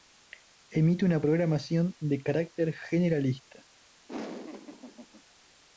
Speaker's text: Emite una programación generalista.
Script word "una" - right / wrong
right